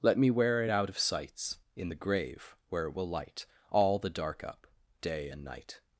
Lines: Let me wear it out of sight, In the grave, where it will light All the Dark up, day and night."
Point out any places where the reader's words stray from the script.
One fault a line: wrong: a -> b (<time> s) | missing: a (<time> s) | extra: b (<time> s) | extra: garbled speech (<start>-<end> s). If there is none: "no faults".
wrong: sight -> sights (1.0 s)